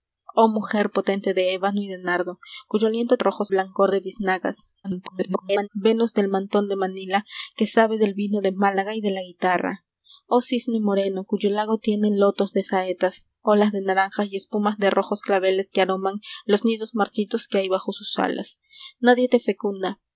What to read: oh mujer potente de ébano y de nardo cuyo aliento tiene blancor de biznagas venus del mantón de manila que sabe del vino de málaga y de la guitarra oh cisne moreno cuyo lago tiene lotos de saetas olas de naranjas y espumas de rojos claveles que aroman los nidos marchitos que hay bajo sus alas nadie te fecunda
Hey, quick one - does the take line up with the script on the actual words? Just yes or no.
no